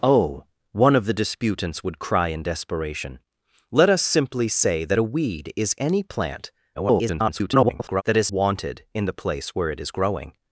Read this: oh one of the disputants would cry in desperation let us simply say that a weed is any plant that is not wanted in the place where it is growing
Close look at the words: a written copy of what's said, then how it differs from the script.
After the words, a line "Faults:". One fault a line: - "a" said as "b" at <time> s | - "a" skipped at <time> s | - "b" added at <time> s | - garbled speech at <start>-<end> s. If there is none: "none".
oh one of the disputants would cry in desperation let us simply say that a weed is any plant [garbled] that is wanted in the place where it is growing
Faults:
- garbled speech at 6.7-8.0 s
- "not" skipped at 8.3 s